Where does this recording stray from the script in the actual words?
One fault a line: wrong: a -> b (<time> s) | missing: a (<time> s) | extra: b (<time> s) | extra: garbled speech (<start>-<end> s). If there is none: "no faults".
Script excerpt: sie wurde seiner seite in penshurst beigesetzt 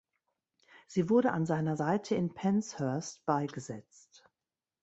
extra: an (1.3 s)